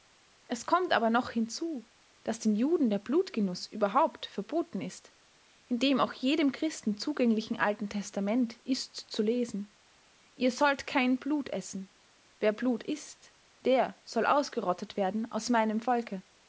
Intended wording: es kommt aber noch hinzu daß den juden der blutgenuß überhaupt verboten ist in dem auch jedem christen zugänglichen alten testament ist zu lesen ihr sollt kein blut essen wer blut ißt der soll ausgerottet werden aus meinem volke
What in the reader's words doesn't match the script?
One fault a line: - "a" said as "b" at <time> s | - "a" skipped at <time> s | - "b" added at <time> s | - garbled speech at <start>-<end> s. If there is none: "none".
none